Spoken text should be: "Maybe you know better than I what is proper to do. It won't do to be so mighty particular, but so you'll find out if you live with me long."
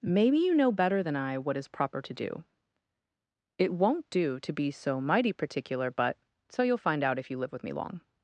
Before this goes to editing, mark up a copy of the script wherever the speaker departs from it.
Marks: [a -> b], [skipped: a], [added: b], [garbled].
"Maybe you know better than I what is proper to do. It won't do to be so mighty particular, but so you'll find out if you live with me long."